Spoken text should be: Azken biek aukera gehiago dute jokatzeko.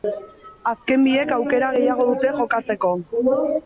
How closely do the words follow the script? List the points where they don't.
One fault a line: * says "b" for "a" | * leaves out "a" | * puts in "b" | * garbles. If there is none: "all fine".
all fine